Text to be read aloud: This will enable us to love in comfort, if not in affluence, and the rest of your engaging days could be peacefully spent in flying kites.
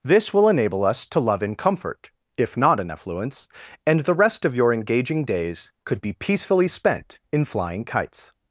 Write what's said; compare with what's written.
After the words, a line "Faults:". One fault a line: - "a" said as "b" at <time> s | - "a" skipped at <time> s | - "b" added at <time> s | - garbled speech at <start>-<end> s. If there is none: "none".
This will enable us to love in comfort, if not in affluence, and the rest of your engaging days could be peacefully spent in flying kites.
Faults:
none